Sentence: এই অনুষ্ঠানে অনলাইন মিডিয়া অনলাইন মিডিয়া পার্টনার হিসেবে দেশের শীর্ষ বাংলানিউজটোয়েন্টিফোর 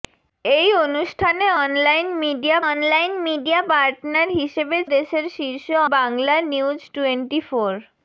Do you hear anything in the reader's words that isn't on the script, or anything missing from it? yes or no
no